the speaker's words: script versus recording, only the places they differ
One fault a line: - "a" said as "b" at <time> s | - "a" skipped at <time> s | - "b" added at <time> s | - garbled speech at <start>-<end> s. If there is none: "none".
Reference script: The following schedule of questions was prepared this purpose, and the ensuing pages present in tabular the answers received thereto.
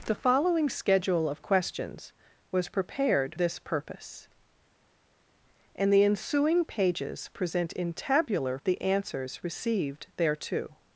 none